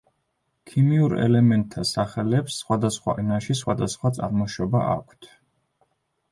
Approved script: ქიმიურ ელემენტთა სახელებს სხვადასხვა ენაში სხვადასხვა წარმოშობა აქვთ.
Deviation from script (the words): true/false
false